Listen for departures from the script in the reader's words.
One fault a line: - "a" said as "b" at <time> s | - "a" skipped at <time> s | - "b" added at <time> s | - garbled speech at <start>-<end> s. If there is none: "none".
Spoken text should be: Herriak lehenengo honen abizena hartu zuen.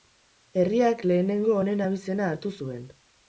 none